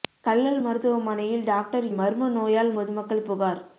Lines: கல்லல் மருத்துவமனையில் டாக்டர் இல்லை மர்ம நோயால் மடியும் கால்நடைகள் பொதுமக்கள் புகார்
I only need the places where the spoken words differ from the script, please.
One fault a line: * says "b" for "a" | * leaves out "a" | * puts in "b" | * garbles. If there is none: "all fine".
* leaves out "இல்லை"
* leaves out "மடியும் கால்நடைகள்"